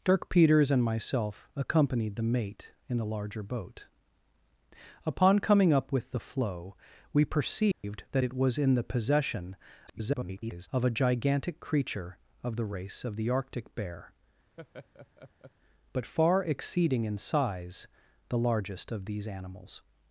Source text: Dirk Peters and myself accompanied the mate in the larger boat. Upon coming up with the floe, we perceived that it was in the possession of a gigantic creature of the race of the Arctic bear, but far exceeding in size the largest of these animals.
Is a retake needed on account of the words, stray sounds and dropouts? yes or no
yes